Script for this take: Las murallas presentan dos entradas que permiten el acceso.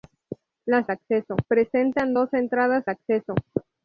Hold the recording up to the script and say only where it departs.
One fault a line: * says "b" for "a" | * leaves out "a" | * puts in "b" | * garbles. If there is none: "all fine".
* says "acceso" for "murallas"
* leaves out "que permiten el"